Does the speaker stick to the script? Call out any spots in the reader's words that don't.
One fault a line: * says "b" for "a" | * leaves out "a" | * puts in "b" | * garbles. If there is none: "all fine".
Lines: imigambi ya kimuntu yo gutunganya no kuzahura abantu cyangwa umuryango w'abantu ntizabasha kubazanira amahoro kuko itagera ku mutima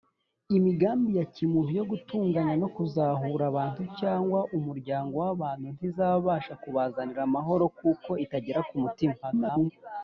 * garbles